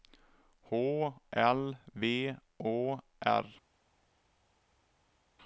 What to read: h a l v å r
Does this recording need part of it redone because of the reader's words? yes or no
yes